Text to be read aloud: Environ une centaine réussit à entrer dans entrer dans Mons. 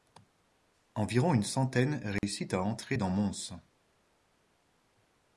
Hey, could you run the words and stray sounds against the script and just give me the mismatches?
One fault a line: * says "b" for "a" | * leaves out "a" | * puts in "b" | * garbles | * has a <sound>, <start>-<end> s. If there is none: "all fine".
* has a dropout, 2.2-2.2 s
* leaves out "entrer dans"